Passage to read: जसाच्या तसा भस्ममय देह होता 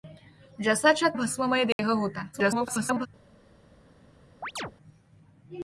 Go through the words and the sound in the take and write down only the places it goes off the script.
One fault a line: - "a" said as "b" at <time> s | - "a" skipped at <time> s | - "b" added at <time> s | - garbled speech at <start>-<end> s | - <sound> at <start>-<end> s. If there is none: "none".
- "तसा" skipped at 1.1 s
- dropout at 1.7-1.8 s
- garbled speech at 2.3-3.1 s
- chirp at 4.4-4.7 s